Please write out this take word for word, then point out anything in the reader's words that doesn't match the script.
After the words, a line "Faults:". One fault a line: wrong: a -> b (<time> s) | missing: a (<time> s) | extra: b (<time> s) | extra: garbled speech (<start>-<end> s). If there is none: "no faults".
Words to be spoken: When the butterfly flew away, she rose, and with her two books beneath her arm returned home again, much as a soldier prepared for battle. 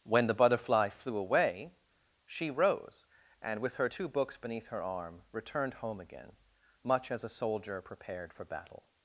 When the butterfly flew away, she rose, and with her two books beneath her arm returned home again, much as a soldier prepared for battle.
Faults:
no faults